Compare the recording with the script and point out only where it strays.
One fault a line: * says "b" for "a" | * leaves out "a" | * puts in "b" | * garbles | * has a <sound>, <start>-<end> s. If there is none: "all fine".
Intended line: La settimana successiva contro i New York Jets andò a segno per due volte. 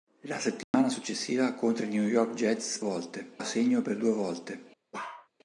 * has a dropout, 0.6-0.7 s
* says "volte" for "andò"
* has a bark, 4.9-5.3 s